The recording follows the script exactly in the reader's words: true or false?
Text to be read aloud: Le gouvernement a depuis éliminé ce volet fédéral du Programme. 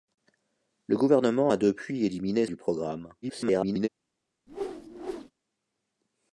false